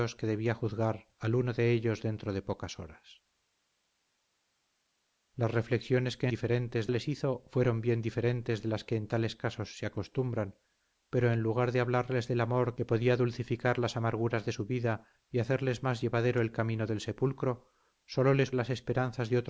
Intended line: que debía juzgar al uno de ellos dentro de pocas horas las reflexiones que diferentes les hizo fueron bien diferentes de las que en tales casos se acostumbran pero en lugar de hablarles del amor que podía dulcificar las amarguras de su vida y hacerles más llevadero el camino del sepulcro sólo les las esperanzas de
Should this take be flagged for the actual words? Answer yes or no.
no